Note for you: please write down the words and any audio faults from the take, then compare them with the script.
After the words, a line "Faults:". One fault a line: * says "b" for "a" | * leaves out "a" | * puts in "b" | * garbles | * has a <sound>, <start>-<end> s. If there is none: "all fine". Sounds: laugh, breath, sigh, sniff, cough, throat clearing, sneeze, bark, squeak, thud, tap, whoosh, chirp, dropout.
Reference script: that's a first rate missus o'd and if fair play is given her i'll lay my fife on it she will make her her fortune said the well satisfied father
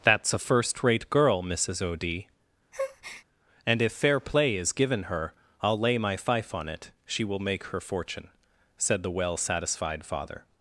that's a first rate girl missus o'd and if fair play is given her i'll lay my fife on it she will make her fortune said the well satisfied father
Faults:
* puts in "girl"
* has a breath, 2.7-3.2 s
* leaves out "her"